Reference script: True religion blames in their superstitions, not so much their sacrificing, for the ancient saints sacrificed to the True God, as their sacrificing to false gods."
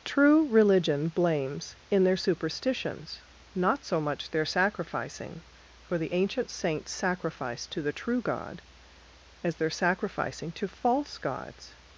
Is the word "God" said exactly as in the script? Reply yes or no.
yes